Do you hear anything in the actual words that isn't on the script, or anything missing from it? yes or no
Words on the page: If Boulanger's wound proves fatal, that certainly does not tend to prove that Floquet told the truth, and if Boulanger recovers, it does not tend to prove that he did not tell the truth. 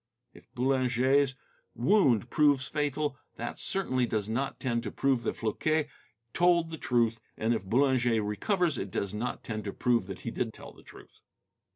yes